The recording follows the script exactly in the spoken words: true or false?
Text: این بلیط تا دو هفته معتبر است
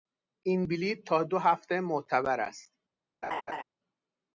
true